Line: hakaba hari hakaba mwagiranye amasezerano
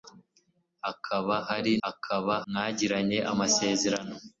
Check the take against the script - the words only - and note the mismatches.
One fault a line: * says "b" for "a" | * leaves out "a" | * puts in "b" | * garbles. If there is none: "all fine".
all fine